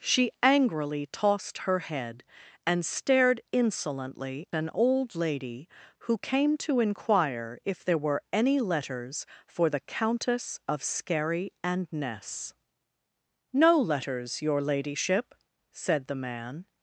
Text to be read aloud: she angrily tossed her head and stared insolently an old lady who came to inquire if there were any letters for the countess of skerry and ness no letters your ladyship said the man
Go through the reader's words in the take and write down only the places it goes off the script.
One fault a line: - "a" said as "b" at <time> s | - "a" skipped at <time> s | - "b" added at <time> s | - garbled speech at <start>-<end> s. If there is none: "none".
none